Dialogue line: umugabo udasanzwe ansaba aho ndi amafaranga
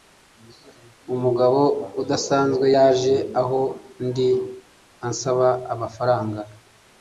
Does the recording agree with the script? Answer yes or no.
no